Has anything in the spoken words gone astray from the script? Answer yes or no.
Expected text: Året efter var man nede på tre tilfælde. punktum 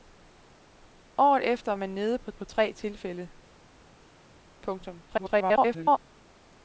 yes